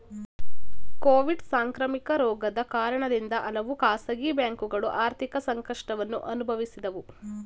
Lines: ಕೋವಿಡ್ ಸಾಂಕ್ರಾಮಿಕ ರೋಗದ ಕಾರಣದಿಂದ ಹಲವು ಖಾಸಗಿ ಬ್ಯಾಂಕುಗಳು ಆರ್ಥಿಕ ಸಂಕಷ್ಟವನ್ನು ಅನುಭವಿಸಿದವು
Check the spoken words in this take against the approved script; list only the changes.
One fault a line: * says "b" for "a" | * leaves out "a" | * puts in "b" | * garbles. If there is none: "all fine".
all fine